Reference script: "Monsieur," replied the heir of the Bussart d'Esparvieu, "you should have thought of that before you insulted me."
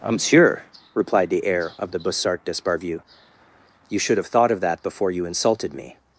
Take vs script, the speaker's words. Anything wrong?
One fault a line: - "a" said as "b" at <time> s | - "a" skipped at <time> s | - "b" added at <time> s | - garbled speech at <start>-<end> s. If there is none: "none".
none